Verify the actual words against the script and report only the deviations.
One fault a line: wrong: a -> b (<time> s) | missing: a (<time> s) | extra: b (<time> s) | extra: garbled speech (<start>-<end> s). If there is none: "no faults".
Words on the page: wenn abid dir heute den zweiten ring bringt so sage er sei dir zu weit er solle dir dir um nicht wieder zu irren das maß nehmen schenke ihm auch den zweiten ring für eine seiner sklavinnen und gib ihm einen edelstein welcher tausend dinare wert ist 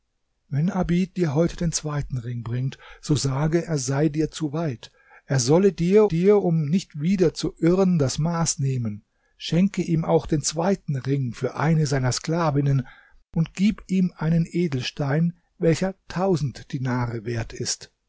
no faults